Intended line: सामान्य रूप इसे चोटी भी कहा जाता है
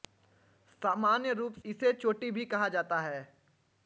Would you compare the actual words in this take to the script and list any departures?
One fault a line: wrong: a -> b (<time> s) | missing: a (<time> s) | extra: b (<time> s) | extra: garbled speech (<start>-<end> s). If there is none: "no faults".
no faults